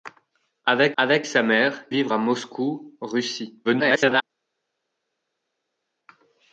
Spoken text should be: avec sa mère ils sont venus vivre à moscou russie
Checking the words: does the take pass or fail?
fail